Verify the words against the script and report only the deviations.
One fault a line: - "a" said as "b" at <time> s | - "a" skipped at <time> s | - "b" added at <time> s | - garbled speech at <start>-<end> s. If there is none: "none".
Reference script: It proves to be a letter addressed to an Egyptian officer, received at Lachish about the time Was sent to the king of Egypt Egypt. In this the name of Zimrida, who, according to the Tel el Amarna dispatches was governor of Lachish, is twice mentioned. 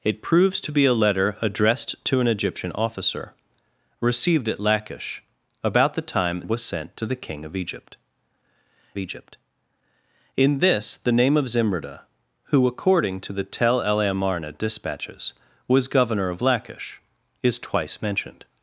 none